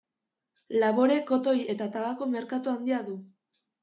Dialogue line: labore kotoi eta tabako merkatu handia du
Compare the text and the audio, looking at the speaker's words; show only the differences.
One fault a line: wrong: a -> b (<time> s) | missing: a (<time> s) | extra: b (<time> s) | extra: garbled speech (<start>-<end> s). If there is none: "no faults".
no faults